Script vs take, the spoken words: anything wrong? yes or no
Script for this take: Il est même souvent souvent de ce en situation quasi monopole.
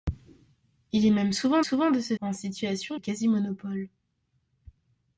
no